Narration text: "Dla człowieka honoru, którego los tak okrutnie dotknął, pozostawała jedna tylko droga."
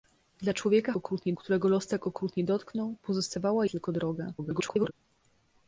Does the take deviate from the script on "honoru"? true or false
true